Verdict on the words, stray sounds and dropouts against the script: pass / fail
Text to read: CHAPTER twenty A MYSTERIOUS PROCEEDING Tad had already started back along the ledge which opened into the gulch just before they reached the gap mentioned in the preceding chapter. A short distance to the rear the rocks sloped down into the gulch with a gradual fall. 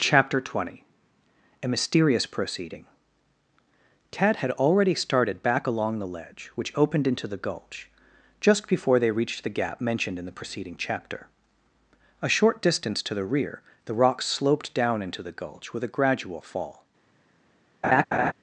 fail